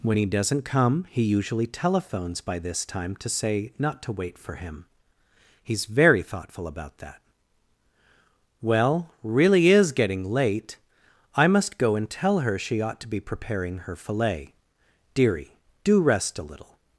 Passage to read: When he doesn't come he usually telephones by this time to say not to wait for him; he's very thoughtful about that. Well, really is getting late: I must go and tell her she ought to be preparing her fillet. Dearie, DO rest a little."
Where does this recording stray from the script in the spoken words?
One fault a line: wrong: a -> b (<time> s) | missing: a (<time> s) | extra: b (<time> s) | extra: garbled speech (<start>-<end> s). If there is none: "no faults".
no faults